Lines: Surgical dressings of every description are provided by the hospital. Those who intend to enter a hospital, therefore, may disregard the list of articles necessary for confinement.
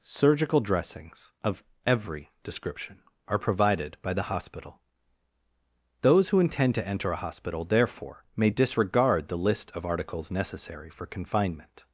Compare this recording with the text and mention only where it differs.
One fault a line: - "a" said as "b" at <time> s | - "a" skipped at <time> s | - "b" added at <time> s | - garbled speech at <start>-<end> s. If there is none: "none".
none